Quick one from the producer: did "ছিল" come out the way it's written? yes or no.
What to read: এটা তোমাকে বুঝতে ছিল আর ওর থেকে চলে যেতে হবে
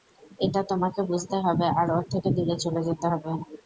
no